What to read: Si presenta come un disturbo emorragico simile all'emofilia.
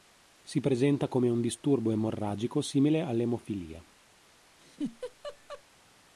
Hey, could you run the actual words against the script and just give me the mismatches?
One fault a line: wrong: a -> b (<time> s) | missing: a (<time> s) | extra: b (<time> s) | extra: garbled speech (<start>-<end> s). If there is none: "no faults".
no faults